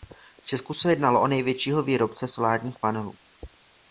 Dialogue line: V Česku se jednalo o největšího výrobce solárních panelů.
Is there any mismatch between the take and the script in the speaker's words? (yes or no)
no